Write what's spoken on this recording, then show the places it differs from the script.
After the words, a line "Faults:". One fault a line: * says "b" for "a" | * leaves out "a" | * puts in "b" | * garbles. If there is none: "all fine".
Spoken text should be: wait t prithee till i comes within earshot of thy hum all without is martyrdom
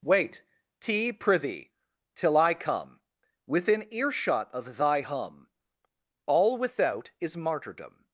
wait t prithee till i come within earshot of thy hum all without is martyrdom
Faults:
* says "come" for "comes"